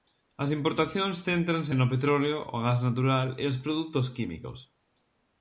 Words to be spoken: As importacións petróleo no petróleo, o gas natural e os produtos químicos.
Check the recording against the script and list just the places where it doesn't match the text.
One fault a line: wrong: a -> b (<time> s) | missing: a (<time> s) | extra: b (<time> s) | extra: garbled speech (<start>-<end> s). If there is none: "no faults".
wrong: petróleo -> céntranse (1.3 s)